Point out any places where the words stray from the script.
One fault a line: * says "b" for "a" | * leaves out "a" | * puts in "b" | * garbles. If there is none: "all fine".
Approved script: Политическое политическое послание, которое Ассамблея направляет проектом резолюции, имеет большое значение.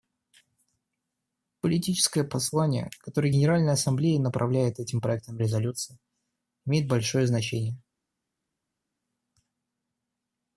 * leaves out "политическое"
* puts in "Генеральная"
* puts in "этим"